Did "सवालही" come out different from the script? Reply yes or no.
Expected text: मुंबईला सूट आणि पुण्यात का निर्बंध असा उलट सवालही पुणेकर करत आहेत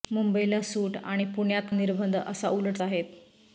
yes